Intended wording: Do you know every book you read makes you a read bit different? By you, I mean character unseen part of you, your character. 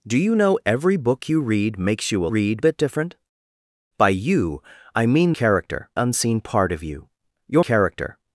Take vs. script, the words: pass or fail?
pass